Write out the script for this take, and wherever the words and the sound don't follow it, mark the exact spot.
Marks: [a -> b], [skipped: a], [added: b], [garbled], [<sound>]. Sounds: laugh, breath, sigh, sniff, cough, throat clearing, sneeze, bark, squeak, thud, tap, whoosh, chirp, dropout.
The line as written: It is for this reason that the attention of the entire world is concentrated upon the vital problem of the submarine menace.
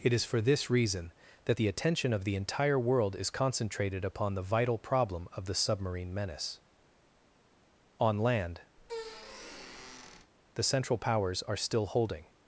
It is for this reason that the attention of the entire world is concentrated upon the vital problem of the submarine menace. [added: On land the Central Powers are still holding] [squeak]